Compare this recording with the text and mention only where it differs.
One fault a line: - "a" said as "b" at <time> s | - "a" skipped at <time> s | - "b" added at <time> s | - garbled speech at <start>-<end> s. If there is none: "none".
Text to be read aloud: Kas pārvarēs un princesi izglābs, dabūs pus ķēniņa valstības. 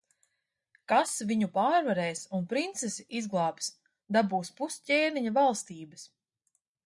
- "viņu" added at 1.3 s